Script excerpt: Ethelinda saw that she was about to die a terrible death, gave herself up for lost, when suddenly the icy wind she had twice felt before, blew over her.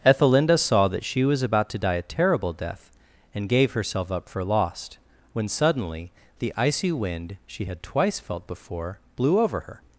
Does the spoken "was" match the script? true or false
true